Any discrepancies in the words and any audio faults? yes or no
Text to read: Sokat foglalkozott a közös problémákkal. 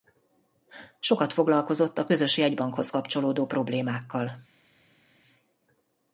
yes